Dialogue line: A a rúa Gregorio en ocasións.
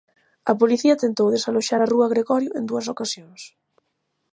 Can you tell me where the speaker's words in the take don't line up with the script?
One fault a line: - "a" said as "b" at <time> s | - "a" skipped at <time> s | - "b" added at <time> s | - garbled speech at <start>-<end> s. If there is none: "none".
- "policía tentou desaloxar" added at 0.6 s
- "dúas" added at 2.7 s